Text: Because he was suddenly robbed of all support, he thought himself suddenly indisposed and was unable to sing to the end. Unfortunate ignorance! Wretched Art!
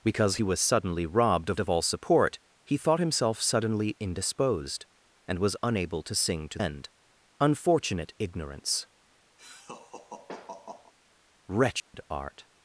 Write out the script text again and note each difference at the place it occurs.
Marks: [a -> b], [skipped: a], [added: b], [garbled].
Because he was suddenly robbed of [added: of] all support, he thought himself suddenly indisposed and was unable to sing to [skipped: the] end. Unfortunate ignorance! Wretched Art!